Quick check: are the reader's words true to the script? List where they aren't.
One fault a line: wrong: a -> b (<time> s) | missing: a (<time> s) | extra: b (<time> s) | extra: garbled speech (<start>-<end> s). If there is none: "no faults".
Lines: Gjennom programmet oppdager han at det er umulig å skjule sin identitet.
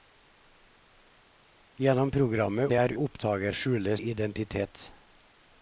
missing: oppdager han at (2.7 s)
wrong: umulig -> oppdager (2.9 s)
missing: sin (4.0 s)